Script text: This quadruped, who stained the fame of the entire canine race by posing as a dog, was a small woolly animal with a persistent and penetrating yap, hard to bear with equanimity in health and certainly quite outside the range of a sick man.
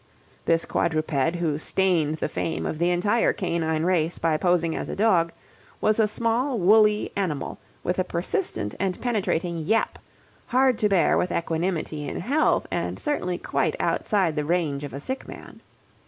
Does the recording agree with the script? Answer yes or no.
yes